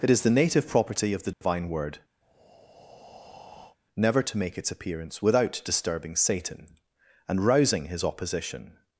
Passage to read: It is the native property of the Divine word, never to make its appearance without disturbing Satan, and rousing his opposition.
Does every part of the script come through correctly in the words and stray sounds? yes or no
no